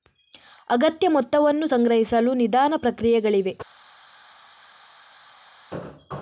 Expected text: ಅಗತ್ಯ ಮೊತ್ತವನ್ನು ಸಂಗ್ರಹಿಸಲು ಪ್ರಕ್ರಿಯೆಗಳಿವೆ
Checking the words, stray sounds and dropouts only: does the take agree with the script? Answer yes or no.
no